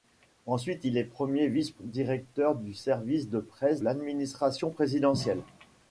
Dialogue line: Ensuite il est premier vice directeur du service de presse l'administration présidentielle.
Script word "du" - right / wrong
right